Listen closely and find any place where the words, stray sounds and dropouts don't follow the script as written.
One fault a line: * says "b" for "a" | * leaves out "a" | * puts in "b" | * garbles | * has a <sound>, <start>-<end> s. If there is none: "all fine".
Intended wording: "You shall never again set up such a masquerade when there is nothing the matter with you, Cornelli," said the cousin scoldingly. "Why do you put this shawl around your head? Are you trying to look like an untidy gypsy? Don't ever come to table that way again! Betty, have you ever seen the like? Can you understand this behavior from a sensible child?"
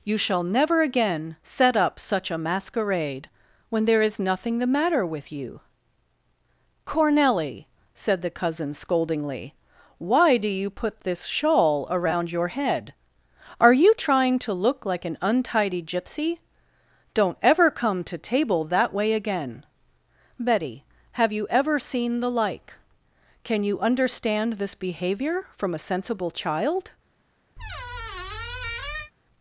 * has a squeak, 27.6-29.1 s